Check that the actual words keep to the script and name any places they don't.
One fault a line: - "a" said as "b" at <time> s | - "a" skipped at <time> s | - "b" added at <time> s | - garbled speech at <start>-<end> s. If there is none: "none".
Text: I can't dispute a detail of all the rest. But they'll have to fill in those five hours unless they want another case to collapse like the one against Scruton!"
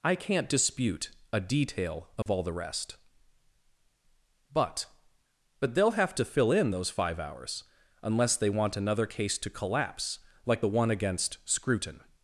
- "But" added at 5.6 s